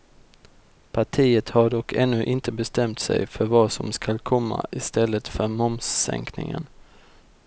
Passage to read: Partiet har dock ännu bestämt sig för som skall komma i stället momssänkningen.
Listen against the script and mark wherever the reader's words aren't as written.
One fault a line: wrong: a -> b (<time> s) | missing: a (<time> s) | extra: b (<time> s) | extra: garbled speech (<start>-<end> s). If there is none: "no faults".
extra: inte (2.2 s)
extra: vad (3.4 s)
extra: för (5.3 s)